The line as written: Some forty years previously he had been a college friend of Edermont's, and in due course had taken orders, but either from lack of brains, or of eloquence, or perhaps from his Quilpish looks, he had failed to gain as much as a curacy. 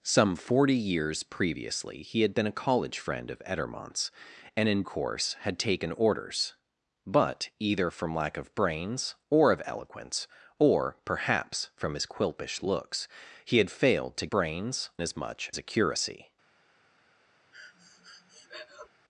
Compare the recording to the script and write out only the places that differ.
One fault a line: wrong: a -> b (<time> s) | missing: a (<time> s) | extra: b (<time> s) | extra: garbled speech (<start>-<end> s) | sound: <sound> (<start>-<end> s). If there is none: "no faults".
missing: due (4.8 s)
wrong: gain -> brains (14.3 s)
missing: as (15.5 s)
sound: breath (17.5-18.9 s)